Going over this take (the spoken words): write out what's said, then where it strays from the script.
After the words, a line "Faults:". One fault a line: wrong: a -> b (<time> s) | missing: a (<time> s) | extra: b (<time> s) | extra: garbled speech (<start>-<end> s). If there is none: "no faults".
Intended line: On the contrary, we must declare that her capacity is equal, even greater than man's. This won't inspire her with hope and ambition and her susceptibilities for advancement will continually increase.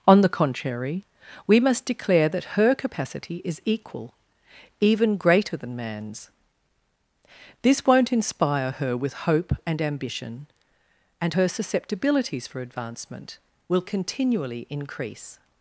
On the contrary, we must declare that her capacity is equal, even greater than man's. This won't inspire her with hope and ambition and her susceptibilities for advancement will continually increase.
Faults:
no faults